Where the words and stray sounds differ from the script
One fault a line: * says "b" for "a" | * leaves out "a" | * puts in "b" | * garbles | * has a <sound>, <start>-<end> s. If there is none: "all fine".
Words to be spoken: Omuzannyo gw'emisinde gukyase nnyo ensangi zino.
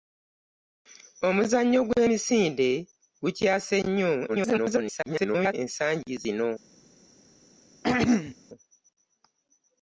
* garbles
* has a throat clearing, 7.8-8.4 s